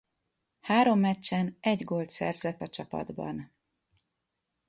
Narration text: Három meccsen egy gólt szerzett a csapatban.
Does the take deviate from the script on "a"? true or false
false